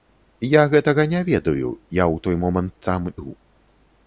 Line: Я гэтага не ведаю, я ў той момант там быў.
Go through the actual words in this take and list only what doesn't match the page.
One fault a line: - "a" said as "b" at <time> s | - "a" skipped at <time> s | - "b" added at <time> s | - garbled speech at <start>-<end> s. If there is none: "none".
none